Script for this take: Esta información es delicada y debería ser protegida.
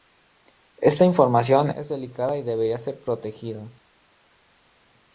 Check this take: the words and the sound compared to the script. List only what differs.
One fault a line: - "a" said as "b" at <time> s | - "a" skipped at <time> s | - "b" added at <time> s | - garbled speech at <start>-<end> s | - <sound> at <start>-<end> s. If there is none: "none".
none